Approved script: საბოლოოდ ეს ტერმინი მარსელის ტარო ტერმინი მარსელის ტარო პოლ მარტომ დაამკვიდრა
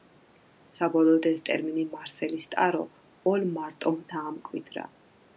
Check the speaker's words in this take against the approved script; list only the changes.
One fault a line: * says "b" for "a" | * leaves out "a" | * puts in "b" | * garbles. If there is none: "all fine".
* leaves out "ტერმინი მარსელის ტარო"